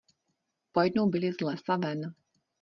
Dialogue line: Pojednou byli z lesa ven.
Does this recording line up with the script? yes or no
yes